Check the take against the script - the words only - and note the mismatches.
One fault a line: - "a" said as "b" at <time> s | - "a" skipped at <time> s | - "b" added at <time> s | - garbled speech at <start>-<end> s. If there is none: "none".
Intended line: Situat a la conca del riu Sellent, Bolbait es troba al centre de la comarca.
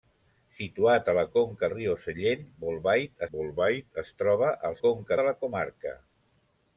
- "del" skipped at 1.7 s
- "Bolbait" added at 3.3 s
- "centre" said as "conca" at 4.8 s